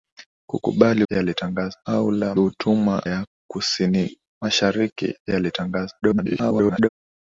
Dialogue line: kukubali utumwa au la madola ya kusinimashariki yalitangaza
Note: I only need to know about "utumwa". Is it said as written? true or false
false